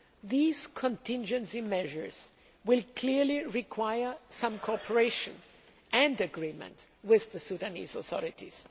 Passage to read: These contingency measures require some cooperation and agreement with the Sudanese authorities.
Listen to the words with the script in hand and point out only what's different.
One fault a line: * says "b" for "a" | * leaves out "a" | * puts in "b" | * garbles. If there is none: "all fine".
* puts in "will clearly"